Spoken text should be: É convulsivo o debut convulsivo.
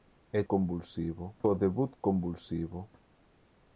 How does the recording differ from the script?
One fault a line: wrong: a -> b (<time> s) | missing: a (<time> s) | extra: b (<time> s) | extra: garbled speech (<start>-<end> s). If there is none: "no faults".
no faults